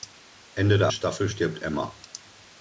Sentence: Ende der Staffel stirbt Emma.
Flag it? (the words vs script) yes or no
no